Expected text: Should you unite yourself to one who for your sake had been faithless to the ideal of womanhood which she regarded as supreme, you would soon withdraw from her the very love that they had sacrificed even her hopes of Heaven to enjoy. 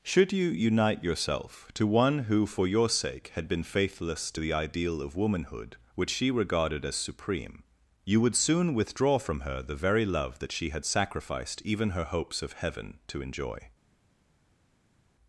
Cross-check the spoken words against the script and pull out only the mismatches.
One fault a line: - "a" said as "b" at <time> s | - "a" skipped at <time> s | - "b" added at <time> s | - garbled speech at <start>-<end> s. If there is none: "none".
- "they" said as "she" at 10.5 s